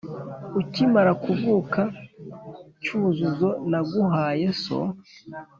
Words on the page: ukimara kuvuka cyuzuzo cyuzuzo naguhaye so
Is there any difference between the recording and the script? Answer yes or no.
yes